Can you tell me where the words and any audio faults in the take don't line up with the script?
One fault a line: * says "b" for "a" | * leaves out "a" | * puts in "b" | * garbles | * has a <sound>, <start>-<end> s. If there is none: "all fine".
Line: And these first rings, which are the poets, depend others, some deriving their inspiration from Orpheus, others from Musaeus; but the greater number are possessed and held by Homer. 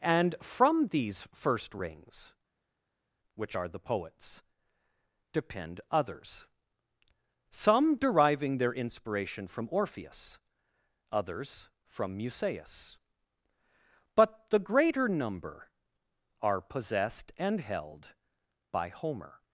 * puts in "from"